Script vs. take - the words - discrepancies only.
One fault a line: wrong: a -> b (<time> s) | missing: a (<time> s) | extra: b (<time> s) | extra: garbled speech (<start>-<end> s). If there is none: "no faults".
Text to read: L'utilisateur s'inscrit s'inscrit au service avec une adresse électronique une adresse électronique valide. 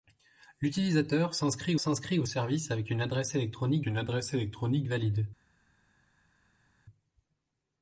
no faults